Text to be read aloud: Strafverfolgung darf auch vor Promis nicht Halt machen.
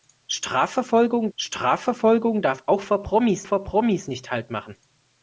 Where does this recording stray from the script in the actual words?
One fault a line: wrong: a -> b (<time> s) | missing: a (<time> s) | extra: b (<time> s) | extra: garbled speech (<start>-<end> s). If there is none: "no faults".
extra: strafverfolgung (1.4 s)
extra: vor Promis (3.4 s)